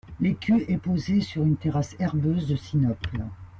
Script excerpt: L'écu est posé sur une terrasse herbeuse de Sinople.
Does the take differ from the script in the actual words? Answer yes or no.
no